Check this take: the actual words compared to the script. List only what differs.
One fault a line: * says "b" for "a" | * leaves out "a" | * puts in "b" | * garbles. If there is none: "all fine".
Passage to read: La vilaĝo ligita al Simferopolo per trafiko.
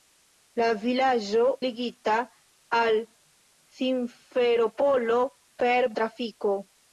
all fine